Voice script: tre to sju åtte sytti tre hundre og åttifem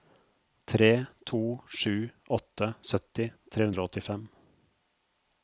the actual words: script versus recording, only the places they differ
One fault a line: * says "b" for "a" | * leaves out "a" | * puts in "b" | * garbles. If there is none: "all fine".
all fine